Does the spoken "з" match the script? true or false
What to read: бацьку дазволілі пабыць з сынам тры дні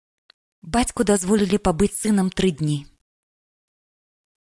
true